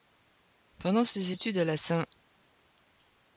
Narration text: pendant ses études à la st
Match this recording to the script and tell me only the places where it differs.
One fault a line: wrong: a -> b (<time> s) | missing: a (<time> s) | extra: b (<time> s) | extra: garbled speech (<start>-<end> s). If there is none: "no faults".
no faults